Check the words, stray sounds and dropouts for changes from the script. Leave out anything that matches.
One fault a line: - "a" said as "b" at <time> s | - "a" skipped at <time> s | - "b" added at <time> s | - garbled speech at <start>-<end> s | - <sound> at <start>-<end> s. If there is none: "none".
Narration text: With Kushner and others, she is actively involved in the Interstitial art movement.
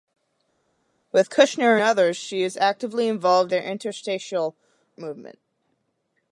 - "and" skipped at 1.8 s
- "in" skipped at 3.5 s
- "art" skipped at 4.6 s